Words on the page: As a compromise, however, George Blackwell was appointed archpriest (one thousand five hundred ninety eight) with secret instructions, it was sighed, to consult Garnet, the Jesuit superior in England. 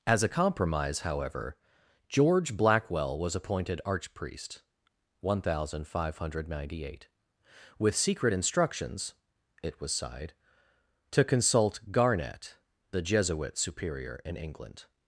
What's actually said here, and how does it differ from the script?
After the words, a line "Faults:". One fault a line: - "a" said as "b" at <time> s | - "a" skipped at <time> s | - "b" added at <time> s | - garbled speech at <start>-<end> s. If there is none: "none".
As a compromise, however, George Blackwell was appointed archpriest (one thousand five hundred ninety eight) with secret instructions, it was sighed, to consult Garnet, the Jesuit superior in England.
Faults:
none